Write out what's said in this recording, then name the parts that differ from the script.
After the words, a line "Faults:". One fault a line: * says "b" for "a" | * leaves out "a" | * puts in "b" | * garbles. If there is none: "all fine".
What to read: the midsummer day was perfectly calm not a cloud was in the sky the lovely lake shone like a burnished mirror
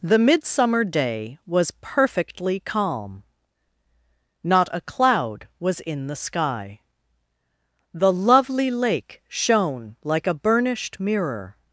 the midsummer day was perfectly calm not a cloud was in the sky the lovely lake shone like a burnished mirror
Faults:
all fine